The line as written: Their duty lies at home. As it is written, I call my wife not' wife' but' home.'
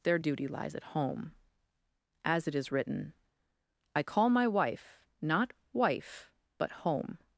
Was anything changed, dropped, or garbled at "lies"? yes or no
no